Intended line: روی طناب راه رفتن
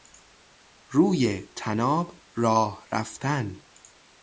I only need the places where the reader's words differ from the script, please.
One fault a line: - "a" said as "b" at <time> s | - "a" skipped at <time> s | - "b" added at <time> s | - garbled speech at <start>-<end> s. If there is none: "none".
none